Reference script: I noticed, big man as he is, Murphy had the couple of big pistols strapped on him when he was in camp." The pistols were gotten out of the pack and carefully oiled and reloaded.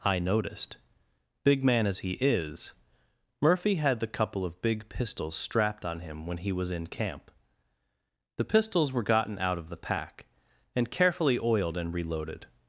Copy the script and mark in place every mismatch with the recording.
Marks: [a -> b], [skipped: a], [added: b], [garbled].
I noticed, big man as he is, Murphy had the couple of big pistols strapped on him when he was in camp." The pistols were gotten out of the pack and carefully oiled and reloaded.